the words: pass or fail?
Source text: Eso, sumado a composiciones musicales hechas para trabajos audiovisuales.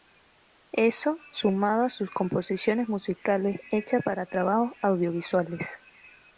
fail